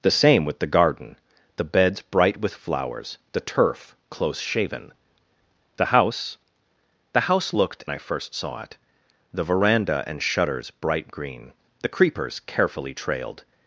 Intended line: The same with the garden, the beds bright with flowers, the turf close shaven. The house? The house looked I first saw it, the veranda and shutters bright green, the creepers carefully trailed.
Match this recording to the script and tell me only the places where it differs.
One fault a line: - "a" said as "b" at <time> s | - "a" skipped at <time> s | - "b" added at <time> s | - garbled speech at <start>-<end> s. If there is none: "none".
none